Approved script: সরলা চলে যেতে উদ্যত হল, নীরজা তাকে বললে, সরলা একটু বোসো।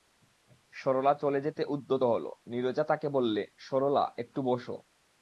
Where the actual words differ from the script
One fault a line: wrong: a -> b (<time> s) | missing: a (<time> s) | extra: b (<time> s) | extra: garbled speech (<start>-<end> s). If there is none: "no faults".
no faults